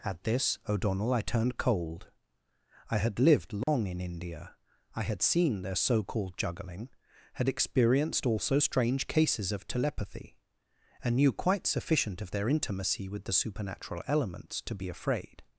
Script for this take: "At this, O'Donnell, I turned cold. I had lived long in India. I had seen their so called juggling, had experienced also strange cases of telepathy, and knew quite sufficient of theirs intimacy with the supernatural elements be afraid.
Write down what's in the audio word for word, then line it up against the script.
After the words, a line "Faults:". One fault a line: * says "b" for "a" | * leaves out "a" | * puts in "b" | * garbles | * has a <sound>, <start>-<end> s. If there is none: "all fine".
"At this, O'Donnell, I turned cold. I had lived long in India. I had seen their so called juggling, had experienced also strange cases of telepathy, and knew quite sufficient of their intimacy with the supernatural elements to be afraid.
Faults:
* has a dropout, 3.6-3.7 s
* says "their" for "theirs"
* puts in "to"